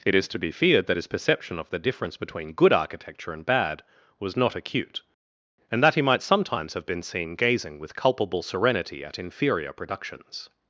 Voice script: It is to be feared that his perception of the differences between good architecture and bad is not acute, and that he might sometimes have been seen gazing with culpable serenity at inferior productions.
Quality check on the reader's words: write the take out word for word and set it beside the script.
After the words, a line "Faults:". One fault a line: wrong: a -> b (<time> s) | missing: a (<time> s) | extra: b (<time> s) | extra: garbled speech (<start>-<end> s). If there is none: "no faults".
It is to be feared that his perception of the difference between good architecture and bad was not acute, and that he might sometimes have been seen gazing with culpable serenity at inferior productions.
Faults:
wrong: differences -> difference (1.8 s)
wrong: is -> was (4.2 s)